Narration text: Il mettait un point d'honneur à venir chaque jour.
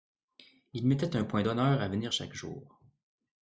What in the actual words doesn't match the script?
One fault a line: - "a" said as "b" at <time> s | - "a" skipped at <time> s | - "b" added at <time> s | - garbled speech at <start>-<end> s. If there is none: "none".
none